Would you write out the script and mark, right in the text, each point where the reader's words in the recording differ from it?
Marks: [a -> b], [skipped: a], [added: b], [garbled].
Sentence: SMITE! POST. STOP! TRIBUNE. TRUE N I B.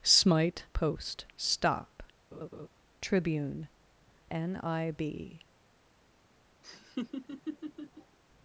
SMITE! POST. STOP! TRIBUNE. [skipped: TRUE] N I B.